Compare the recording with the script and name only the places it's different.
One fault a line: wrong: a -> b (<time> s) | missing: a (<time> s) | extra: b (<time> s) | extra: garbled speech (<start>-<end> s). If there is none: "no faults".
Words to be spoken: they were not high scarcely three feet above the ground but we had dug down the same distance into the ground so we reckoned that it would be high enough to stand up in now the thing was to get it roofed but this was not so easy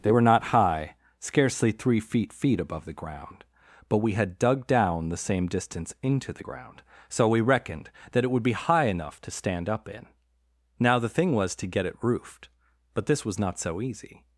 extra: feet (2.3 s)